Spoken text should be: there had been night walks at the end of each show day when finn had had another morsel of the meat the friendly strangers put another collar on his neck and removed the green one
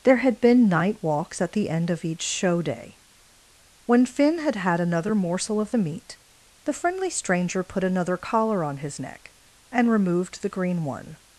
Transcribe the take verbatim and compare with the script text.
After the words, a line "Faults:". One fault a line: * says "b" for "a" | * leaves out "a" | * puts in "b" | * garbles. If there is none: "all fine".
there had been night walks at the end of each show day when finn had had another morsel of the meat the friendly stranger put another collar on his neck and removed the green one
Faults:
* says "stranger" for "strangers"